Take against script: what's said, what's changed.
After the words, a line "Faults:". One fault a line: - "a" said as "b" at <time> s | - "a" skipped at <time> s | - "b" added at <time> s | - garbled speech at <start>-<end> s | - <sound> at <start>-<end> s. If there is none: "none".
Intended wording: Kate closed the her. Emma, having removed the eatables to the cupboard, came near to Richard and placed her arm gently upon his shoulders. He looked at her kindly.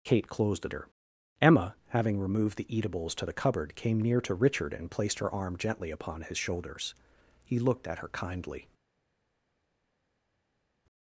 Kate closed the her. Emma, having removed the eatables to the cupboard, came near to Richard and placed her arm gently upon his shoulders. He looked at her kindly.
Faults:
none